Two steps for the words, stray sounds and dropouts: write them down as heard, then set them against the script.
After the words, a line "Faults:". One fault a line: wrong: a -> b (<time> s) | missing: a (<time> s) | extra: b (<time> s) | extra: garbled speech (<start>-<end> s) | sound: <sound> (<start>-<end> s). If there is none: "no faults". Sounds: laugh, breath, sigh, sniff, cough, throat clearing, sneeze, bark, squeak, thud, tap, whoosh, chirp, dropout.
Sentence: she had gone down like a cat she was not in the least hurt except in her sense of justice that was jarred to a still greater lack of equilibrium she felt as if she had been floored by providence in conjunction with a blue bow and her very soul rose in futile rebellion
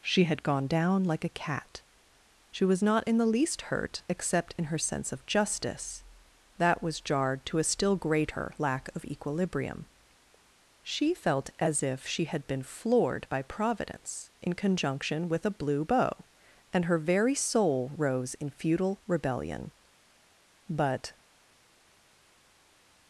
she had gone down like a cat she was not in the least hurt except in her sense of justice that was jarred to a still greater lack of equilibrium she felt as if she had been floored by providence in conjunction with a blue bow and her very soul rose in futile rebellion but
Faults:
extra: but (20.7 s)